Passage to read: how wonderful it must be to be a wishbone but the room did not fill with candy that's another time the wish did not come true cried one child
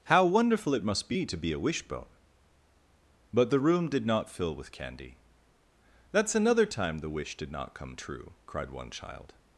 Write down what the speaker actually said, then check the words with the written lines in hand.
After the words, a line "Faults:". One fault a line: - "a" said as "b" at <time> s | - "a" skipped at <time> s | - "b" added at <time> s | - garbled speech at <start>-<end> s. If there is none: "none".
how wonderful it must be to be a wishbone but the room did not fill with candy that's another time the wish did not come true cried one child
Faults:
none